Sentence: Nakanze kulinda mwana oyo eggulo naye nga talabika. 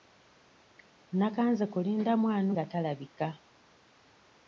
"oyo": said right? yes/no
no